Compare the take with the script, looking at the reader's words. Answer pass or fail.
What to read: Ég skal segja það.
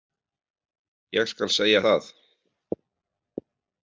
pass